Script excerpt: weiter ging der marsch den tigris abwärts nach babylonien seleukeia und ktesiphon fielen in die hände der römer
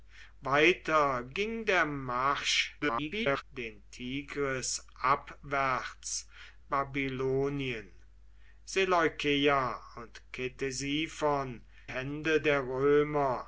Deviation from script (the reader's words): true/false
true